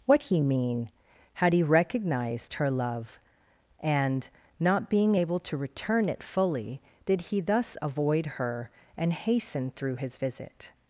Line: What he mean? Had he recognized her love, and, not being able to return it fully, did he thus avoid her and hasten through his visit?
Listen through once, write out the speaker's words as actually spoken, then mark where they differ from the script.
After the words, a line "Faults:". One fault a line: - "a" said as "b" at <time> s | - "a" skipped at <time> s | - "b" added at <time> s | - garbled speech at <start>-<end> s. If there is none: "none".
What he mean? Had he recognized her love, and, not being able to return it fully, did he thus avoid her and hasten through his visit?
Faults:
none